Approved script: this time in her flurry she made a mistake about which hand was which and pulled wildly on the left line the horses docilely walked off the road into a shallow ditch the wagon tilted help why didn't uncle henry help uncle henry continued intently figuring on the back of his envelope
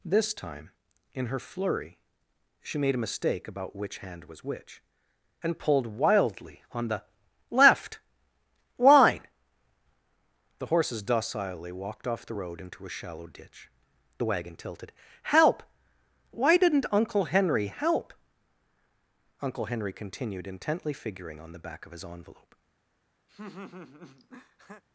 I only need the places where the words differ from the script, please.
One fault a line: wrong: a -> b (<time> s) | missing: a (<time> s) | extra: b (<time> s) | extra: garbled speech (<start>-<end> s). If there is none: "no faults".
no faults